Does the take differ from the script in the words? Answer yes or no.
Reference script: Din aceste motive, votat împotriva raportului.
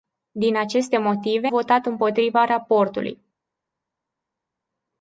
no